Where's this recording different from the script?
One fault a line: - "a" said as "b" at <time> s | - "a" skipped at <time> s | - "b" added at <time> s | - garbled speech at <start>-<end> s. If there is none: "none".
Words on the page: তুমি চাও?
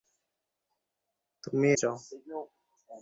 none